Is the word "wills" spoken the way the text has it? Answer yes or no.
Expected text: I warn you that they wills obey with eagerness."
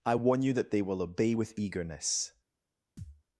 no